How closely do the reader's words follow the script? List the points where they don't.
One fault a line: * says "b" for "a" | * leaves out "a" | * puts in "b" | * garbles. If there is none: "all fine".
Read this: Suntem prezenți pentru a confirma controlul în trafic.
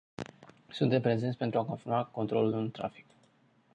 all fine